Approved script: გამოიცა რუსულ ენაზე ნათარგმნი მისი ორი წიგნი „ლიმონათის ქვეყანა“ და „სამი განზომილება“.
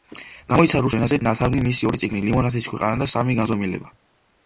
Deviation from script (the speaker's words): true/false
false